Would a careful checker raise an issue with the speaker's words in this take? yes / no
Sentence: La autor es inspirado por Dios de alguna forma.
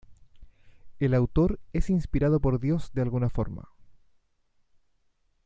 yes